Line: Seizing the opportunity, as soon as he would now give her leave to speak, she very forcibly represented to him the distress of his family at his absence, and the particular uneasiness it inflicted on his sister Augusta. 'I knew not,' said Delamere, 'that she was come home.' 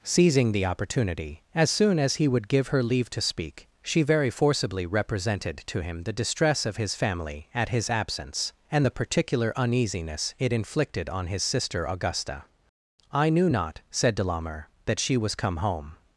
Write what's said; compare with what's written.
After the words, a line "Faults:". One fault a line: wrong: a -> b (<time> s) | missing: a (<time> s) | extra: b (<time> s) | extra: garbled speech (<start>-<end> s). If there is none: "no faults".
Seizing the opportunity, as soon as he would give her leave to speak, she very forcibly represented to him the distress of his family at his absence, and the particular uneasiness it inflicted on his sister Augusta. 'I knew not,' said Delamere, 'that she was come home.'
Faults:
missing: now (2.5 s)